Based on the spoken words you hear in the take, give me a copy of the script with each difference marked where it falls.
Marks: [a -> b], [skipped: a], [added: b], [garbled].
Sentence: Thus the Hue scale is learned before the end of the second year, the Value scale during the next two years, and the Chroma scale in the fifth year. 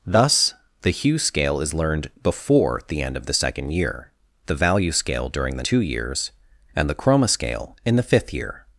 Thus the Hue scale is learned before the end of the second year, the Value scale during the [skipped: next] two years, and the Chroma scale in the fifth year.